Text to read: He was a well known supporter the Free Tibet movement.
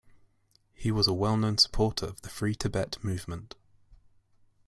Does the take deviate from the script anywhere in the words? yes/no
yes